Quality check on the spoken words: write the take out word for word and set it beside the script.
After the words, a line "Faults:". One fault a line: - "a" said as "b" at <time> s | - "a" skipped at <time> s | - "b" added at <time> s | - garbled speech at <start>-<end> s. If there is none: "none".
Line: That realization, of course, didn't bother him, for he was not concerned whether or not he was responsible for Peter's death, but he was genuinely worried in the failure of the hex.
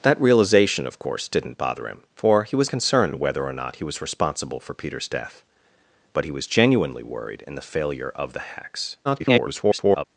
That realization, of course, didn't bother him, for he was concerned whether or not he was responsible for Peter's death, but he was genuinely worried in the failure of the hex. [garbled]
Faults:
- "not" skipped at 2.7 s
- garbled speech at 9.0-10.0 s